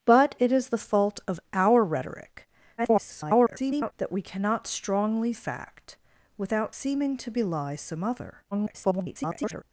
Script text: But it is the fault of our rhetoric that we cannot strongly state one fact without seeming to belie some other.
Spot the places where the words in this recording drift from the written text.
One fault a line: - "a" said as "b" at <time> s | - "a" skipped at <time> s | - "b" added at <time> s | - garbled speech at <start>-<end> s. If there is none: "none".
- garbled speech at 2.8-3.9 s
- "state one" skipped at 5.3 s
- garbled speech at 8.5-9.6 s